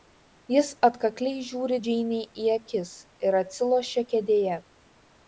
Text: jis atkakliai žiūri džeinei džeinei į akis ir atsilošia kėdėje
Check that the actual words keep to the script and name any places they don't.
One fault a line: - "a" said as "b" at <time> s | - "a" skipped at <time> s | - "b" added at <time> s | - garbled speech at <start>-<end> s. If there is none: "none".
- "džeinei" skipped at 2.3 s